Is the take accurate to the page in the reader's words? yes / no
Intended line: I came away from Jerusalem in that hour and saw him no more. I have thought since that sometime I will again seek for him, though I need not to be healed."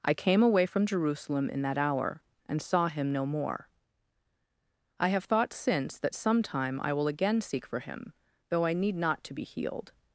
yes